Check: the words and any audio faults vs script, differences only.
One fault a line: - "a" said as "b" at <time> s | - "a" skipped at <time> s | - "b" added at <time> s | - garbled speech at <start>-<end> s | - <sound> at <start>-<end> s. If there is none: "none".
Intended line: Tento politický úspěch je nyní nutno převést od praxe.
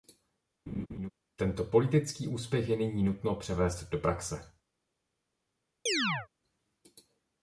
- laugh at 0.7-1.1 s
- "od" said as "do" at 3.9 s
- chirp at 5.9-6.3 s